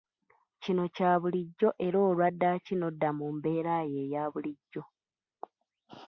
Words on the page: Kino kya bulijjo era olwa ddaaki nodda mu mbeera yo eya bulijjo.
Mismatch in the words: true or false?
false